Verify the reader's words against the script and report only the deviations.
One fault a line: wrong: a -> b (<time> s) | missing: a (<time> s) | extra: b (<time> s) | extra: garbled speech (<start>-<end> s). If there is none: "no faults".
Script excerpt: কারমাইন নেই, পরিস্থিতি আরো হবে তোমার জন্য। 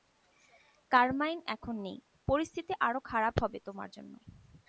extra: এখন (1.4 s)
extra: খারাপ (3.0 s)